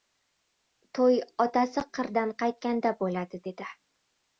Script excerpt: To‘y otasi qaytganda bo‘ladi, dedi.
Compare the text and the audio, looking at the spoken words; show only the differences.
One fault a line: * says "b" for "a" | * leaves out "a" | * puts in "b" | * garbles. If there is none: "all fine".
* puts in "qirdan"